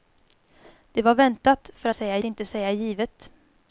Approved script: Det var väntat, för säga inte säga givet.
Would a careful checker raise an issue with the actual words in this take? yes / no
no